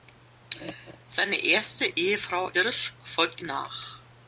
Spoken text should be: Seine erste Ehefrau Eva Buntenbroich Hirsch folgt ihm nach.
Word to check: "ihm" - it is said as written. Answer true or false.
false